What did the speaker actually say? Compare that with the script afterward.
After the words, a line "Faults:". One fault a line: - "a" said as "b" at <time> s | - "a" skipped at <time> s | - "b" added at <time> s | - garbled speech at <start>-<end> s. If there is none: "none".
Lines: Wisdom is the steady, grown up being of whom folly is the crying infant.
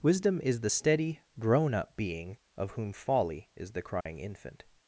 Wisdom is the steady, grown up being of whom folly is the crying infant.
Faults:
none